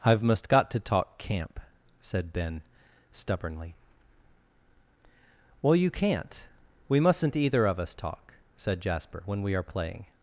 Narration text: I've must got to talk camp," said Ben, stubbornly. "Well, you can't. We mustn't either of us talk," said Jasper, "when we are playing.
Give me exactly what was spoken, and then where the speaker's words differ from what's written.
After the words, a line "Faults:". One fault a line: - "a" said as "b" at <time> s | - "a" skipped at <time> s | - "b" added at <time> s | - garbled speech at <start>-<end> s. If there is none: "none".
I've must got to talk camp," said Ben, stubbornly. "Well, you can't. We mustn't either of us talk," said Jasper, "when we are playing.
Faults:
none